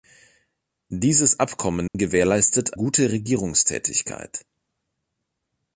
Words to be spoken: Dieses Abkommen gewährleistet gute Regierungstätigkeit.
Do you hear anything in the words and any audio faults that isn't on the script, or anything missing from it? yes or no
yes